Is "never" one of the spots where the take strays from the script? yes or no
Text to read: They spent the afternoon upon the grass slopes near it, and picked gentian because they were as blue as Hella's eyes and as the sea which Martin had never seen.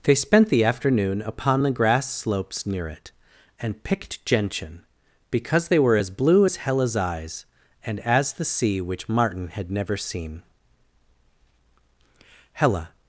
no